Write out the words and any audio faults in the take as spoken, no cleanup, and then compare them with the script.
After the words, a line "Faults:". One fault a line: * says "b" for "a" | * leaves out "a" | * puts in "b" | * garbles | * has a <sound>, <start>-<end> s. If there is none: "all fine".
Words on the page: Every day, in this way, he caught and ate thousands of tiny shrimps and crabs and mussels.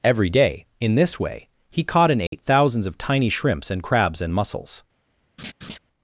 Every day, in this way, he caught and ate thousands of tiny shrimps and crabs and mussels.
Faults:
* has a dropout, 2.3-2.3 s
* has a laugh, 5.4-5.8 s